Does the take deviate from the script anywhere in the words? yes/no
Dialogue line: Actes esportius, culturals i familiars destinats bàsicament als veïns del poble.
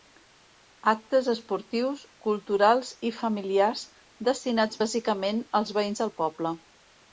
no